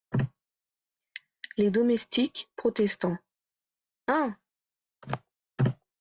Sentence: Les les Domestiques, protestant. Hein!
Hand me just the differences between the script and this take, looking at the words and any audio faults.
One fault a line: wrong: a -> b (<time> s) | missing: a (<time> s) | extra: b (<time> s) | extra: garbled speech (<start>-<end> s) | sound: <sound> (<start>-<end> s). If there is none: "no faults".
missing: les (1.7 s)